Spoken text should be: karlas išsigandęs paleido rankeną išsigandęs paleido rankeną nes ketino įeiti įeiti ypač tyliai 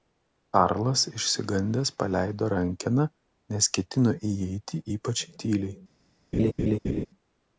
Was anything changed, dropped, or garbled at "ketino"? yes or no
no